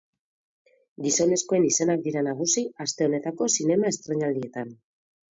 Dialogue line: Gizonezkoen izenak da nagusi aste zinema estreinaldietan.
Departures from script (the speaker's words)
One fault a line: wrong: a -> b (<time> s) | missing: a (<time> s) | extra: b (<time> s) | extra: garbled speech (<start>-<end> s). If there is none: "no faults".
wrong: da -> dira (2.1 s)
extra: honetako (3.1 s)